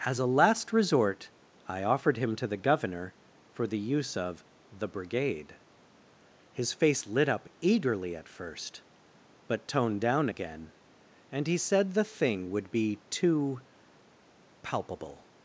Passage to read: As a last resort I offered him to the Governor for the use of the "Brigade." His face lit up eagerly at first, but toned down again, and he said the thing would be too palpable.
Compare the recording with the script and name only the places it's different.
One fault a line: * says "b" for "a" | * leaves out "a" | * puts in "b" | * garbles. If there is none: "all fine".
all fine